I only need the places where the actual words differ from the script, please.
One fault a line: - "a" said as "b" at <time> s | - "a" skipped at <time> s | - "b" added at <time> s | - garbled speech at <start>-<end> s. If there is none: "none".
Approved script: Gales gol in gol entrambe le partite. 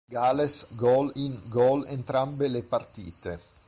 none